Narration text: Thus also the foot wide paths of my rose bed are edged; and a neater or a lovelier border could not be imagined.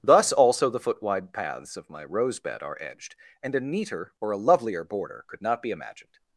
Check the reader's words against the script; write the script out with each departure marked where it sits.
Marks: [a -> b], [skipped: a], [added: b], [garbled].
Thus also the foot wide paths of my rose bed are edged; and a neater or a lovelier border could not be imagined.